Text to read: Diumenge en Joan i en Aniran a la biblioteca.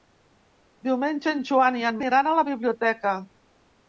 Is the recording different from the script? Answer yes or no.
no